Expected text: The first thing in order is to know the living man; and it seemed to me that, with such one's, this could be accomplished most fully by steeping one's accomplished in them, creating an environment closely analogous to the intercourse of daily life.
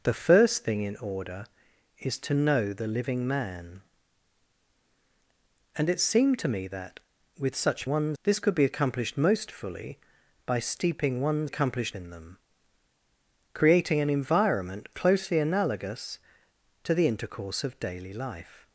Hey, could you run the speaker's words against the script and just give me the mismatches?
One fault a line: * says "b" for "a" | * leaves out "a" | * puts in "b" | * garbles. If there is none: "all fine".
all fine